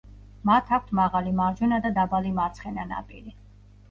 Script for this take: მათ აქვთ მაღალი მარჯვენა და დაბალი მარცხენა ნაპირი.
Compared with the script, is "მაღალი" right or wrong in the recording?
right